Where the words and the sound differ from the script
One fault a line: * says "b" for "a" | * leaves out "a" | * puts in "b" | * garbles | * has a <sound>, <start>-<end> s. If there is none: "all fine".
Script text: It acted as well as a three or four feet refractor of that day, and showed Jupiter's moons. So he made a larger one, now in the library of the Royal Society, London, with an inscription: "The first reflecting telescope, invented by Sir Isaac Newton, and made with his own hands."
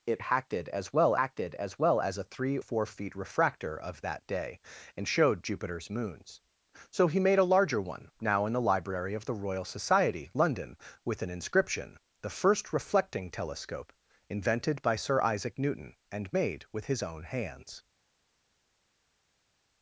* puts in "acted"
* puts in "well as"
* leaves out "or"